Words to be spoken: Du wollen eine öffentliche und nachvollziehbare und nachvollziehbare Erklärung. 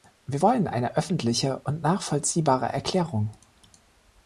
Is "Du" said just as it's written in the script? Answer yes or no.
no